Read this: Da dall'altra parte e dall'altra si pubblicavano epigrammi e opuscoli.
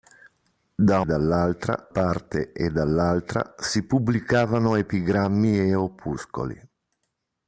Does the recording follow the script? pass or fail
pass